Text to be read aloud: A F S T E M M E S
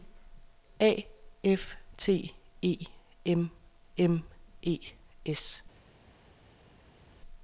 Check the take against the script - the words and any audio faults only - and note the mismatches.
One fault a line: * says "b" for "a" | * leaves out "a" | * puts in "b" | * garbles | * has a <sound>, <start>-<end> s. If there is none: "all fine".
* leaves out "S"